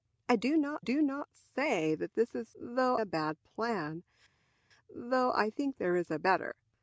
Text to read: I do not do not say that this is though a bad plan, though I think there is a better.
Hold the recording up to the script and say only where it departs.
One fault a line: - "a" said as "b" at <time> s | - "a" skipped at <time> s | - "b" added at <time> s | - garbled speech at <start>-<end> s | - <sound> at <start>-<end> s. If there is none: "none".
none